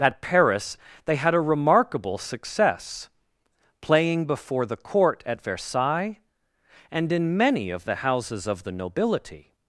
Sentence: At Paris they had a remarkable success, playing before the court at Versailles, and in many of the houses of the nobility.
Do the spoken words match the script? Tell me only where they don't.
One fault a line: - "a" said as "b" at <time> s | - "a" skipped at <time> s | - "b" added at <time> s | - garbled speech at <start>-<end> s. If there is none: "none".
none